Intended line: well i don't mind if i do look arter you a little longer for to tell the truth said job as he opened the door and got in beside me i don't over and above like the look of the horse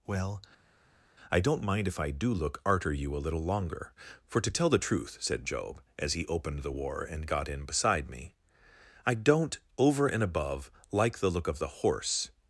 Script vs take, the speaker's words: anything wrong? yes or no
yes